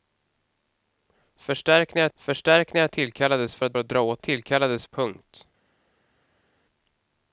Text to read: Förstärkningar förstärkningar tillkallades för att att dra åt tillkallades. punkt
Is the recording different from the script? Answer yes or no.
no